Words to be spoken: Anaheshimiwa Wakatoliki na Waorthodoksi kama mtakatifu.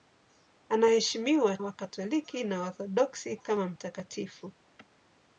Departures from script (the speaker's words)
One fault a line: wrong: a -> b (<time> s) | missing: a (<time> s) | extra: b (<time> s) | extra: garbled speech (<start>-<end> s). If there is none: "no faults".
no faults